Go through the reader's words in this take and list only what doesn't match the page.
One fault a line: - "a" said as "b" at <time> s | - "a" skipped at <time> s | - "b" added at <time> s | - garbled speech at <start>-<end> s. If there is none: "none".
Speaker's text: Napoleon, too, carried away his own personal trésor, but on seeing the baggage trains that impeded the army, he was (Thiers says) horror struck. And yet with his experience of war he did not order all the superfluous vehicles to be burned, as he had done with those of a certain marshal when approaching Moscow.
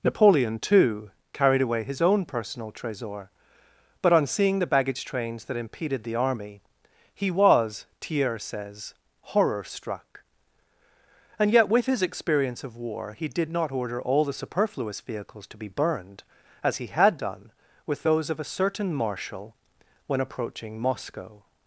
none